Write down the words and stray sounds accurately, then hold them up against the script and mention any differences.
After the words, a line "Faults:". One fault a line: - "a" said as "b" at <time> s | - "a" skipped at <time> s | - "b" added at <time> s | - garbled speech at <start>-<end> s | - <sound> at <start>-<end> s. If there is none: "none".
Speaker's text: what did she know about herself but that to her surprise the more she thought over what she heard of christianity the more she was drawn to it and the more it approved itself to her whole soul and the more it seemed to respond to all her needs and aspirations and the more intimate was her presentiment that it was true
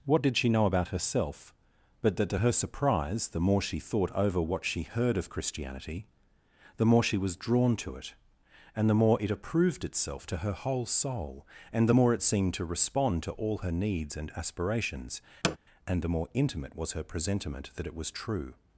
what did she know about herself but that to her surprise the more she thought over what she heard of christianity the more she was drawn to it and the more it approved itself to her whole soul and the more it seemed to respond to all her needs and aspirations and the more intimate was her presentiment that it was true
Faults:
- thud at 15.4-15.6 s